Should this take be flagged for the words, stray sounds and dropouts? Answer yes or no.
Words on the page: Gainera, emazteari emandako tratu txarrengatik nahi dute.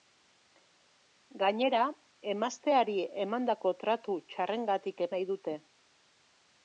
no